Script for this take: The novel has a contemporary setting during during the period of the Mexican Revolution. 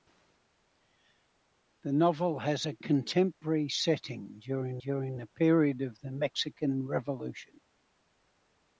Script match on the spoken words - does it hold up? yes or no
yes